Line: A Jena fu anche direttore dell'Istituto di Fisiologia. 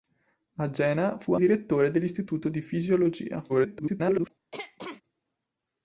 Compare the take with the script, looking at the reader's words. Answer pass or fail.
fail